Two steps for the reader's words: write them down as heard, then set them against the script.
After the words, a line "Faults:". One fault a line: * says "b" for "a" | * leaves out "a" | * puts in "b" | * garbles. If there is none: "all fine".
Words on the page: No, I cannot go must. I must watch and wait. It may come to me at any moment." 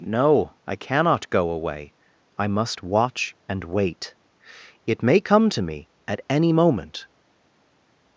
No, I cannot go away. I must watch and wait. It may come to me at any moment."
Faults:
* says "away" for "must"